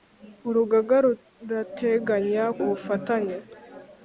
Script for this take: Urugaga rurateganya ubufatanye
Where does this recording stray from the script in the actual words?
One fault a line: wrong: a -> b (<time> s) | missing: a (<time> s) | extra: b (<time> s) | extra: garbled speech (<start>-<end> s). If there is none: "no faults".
no faults